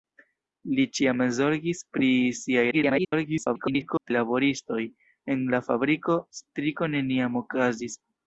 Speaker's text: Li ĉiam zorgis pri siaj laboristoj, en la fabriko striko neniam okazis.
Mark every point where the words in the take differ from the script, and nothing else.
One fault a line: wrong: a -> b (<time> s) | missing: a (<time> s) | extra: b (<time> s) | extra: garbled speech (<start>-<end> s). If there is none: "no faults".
extra: garbled speech (2.7-4.1 s)